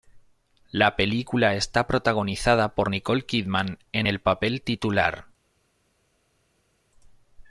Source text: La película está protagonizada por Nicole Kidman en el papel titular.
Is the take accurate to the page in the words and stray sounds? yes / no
yes